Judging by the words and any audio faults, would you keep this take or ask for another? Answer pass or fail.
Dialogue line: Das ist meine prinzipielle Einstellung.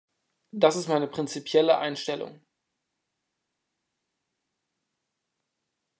pass